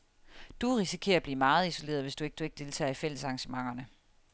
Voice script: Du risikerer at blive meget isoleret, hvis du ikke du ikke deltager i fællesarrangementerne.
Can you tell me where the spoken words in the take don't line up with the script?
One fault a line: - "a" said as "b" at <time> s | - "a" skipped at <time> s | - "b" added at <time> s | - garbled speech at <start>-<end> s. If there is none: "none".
none